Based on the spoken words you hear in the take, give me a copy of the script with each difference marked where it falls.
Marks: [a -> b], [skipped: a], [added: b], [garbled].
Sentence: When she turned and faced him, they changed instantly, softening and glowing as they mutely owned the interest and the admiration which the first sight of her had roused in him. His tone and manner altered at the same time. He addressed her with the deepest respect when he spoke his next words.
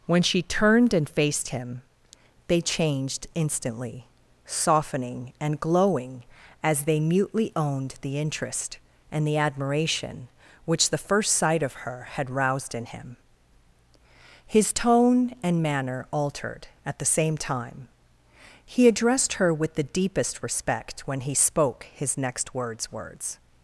When she turned and faced him, they changed instantly, softening and glowing as they mutely owned the interest and the admiration which the first sight of her had roused in him. His tone and manner altered at the same time. He addressed her with the deepest respect when he spoke his next words. [added: words]